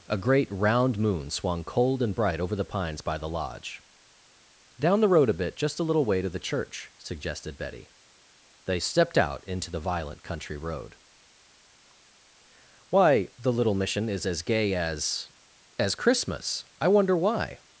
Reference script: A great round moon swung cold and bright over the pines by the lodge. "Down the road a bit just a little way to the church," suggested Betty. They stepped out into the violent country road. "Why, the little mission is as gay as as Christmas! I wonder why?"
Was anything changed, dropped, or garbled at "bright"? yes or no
no